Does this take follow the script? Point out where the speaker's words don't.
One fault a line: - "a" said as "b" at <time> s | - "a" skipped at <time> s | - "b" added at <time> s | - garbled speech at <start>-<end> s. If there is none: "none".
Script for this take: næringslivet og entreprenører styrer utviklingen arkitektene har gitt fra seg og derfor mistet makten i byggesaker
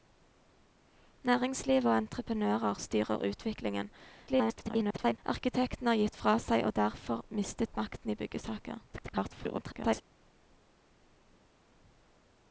- garbled speech at 4.3-5.2 s
- garbled speech at 8.9-10.0 s